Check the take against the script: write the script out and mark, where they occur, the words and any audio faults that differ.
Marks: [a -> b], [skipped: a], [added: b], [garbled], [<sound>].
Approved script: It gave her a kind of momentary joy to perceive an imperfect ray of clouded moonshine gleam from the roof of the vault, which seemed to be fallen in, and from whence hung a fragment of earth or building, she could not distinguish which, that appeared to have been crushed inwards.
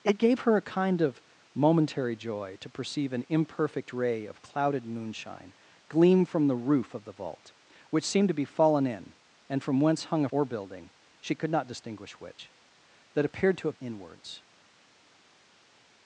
It gave her a kind of momentary joy to perceive an imperfect ray of clouded moonshine gleam from the roof of the vault, which seemed to be fallen in, and from whence hung a [skipped: fragment of earth] or building, she could not distinguish which, that appeared to have [skipped: been crushed] inwards.